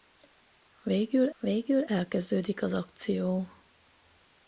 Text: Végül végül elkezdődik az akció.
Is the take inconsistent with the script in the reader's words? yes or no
no